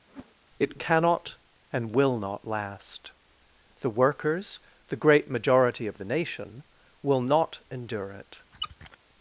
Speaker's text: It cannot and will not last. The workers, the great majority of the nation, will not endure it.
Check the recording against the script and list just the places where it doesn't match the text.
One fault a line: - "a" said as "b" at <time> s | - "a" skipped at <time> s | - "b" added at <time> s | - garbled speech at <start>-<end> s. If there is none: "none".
none